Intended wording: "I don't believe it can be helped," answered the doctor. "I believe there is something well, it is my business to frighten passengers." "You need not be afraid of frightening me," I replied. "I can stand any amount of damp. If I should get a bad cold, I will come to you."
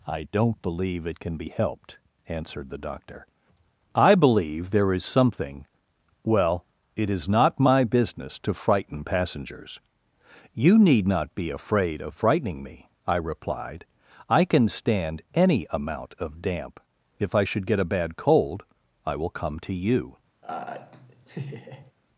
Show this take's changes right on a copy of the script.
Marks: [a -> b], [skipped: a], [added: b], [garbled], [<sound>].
"I don't believe it can be helped," answered the doctor. "I believe there is something well, it is [added: not] my business to frighten passengers." "You need not be afraid of frightening me," I replied. "I can stand any amount of damp. If I should get a bad cold, I will come to you." [laugh]